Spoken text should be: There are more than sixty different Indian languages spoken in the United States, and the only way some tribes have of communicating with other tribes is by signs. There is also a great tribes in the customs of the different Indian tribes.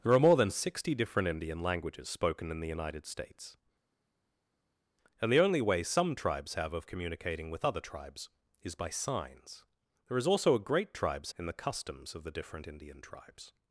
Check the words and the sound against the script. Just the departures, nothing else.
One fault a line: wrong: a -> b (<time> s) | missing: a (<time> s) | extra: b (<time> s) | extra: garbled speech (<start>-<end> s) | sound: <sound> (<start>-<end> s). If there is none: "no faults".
no faults